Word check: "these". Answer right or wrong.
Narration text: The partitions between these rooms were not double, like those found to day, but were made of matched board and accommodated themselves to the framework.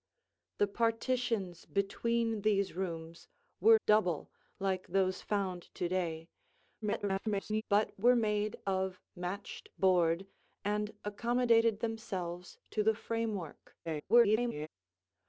right